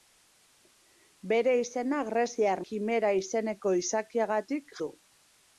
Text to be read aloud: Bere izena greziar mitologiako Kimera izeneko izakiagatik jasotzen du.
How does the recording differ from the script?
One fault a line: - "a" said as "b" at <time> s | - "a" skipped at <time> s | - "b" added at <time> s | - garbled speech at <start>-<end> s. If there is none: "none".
- "mitologiako" skipped at 2.6 s
- "jasotzen" skipped at 4.8 s